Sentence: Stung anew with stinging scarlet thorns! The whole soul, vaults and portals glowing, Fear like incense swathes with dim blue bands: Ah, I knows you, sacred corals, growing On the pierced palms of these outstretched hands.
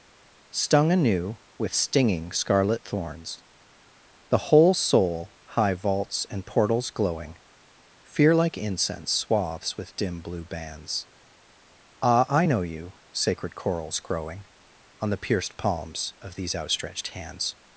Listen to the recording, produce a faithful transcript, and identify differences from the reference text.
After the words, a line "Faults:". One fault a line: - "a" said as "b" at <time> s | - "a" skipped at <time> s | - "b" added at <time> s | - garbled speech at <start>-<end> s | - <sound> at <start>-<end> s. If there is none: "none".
Stung anew with stinging scarlet thorns! The whole soul, high vaults and portals glowing, Fear like incense swathes with dim blue bands: Ah, I know you, sacred corals, growing On the pierced palms of these outstretched hands.
Faults:
- "high" added at 5.4 s
- "knows" said as "know" at 12.5 s